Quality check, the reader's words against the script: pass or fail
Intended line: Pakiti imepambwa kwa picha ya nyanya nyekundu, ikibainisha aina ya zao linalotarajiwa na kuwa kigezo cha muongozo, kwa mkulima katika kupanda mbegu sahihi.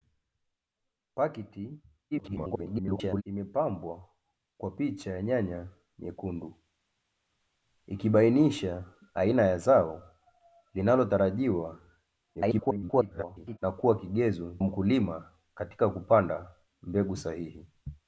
fail